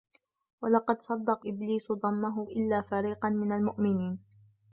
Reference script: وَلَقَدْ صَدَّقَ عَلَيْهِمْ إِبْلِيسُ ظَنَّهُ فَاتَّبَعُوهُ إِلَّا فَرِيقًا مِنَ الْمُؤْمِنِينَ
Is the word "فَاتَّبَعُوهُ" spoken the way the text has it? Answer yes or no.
no